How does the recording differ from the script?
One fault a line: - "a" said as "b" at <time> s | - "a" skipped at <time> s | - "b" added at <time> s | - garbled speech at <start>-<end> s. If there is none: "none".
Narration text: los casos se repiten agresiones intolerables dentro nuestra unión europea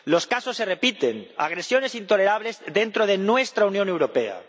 - "de" added at 3.0 s